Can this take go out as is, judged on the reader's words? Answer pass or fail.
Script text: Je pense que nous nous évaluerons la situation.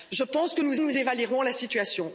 pass